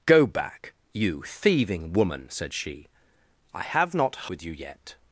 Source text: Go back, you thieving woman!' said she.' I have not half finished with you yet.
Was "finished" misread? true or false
true